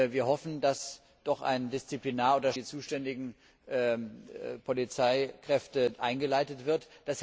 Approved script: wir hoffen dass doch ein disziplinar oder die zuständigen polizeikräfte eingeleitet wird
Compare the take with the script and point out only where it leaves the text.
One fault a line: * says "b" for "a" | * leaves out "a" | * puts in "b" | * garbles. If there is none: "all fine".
all fine